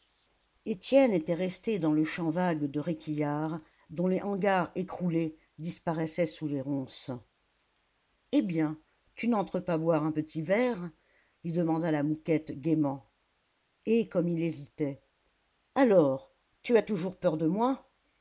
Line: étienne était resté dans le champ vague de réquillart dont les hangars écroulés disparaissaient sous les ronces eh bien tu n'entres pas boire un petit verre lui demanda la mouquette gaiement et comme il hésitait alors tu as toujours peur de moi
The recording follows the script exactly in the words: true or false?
true